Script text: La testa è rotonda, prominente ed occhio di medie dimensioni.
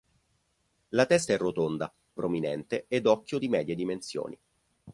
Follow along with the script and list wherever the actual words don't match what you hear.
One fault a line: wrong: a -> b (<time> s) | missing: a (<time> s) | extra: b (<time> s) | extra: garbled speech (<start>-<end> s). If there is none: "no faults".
no faults